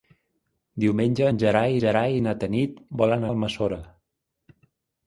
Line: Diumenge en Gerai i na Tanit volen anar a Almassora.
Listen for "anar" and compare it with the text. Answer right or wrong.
wrong